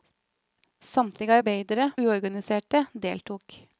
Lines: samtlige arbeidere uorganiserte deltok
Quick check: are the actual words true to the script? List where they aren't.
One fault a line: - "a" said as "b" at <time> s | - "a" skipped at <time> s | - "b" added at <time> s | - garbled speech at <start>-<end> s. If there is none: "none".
none